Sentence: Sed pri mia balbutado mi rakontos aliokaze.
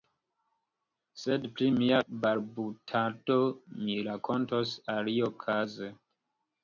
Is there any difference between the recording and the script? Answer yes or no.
no